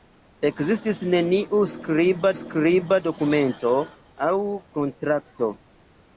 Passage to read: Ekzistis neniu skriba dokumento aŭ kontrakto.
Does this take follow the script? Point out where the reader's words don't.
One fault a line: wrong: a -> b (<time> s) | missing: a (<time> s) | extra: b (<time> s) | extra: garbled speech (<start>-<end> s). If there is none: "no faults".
extra: skriba (2.4 s)